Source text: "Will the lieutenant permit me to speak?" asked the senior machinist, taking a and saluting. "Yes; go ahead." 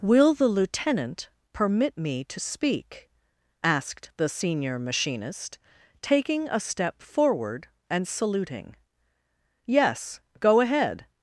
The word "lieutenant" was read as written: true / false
true